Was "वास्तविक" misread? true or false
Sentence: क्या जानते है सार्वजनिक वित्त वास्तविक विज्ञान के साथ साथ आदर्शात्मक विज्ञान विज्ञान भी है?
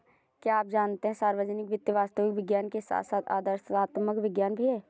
false